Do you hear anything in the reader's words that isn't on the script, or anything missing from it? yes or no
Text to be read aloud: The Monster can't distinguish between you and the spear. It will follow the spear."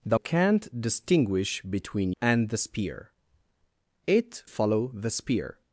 yes